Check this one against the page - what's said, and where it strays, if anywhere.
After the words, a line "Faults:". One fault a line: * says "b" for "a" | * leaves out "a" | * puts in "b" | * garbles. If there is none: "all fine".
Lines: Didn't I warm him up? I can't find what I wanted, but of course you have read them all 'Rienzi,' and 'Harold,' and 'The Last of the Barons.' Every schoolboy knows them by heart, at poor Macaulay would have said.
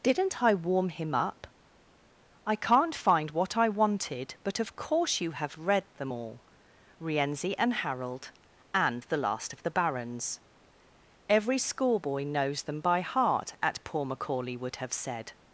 Didn't I warm him up? I can't find what I wanted, but of course you have read them all 'Rienzi,' and 'Harold,' and 'The Last of the Barons.' Every schoolboy knows them by heart, at poor Macaulay would have said.
Faults:
all fine